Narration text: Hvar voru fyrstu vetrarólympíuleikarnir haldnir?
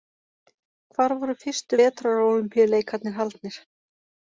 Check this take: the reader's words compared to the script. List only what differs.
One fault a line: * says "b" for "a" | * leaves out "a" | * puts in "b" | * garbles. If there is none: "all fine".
all fine